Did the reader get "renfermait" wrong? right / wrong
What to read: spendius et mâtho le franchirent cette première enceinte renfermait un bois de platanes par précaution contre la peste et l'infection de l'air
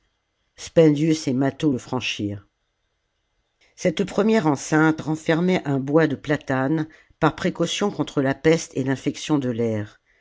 right